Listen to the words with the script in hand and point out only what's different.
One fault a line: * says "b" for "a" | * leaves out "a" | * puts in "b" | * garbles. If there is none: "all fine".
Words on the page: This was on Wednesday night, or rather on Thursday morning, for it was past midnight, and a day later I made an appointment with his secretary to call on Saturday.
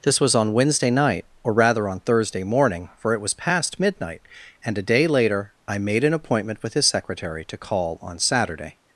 all fine